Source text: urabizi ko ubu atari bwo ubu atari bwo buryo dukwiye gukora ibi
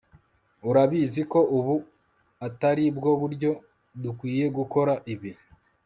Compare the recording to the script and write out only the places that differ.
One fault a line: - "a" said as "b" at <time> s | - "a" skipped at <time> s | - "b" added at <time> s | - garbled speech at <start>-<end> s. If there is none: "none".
- "ubu atari bwo" skipped at 3.1 s